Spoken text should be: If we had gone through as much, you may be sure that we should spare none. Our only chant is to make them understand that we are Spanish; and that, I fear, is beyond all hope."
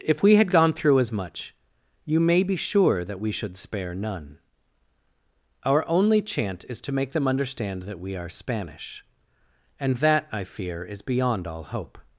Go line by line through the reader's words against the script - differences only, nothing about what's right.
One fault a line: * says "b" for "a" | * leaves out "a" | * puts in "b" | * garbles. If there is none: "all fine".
all fine